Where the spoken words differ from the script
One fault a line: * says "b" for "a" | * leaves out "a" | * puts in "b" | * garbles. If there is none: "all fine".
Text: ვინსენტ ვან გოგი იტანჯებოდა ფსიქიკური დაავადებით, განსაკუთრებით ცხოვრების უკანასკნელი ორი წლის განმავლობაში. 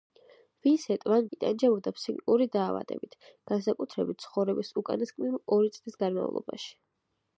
* leaves out "გოგი"